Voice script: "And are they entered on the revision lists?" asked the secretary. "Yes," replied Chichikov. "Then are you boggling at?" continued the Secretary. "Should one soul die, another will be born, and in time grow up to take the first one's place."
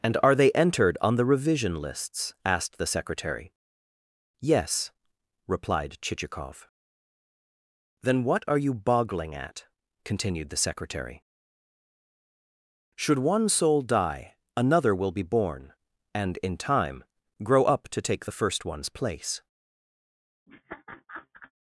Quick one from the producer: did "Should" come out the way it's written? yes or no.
yes